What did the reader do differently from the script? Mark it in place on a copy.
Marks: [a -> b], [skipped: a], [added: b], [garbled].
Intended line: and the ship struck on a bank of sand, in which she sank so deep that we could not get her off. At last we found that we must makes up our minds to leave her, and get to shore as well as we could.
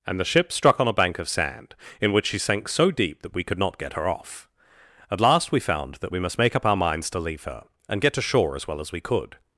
and the ship struck on a bank of sand, in which she sank so deep that we could not get her off. At last we found that we must [makes -> make] up our minds to leave her, and get to shore as well as we could.